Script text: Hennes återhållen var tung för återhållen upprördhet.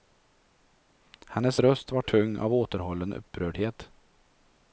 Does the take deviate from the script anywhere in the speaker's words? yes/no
yes